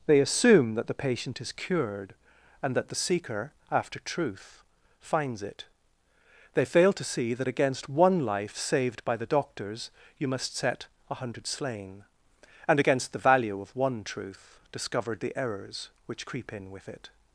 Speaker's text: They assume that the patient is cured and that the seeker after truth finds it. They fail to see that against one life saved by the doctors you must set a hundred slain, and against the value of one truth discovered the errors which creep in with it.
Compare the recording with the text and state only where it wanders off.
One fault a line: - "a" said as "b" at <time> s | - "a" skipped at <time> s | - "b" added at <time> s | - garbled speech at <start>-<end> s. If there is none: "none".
none